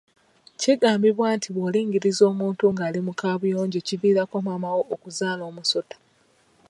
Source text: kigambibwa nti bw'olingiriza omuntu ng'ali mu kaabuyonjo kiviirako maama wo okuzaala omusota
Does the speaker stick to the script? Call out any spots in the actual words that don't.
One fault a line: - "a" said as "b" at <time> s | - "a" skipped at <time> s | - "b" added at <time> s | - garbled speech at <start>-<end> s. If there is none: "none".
none